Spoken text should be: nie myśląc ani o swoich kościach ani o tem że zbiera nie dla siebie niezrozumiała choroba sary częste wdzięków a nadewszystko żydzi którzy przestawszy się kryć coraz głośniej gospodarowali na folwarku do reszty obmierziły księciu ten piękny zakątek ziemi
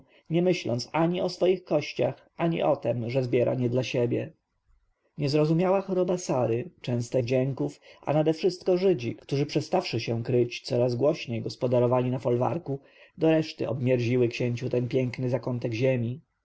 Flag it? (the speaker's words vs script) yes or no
no